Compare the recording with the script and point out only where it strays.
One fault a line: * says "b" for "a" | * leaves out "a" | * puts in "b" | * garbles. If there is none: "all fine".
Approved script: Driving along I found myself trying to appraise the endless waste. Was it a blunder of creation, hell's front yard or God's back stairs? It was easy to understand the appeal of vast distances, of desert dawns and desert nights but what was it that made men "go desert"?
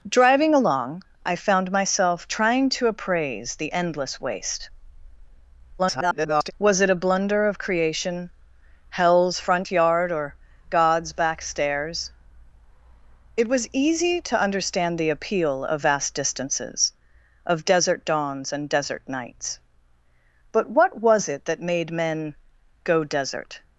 * garbles